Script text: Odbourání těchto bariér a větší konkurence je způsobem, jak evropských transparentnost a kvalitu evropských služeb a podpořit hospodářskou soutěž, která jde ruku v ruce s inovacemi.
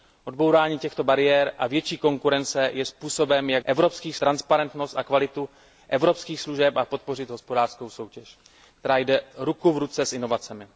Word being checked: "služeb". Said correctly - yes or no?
yes